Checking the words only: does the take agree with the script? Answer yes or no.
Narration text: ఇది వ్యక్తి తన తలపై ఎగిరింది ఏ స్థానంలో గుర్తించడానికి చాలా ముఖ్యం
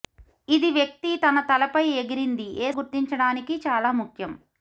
no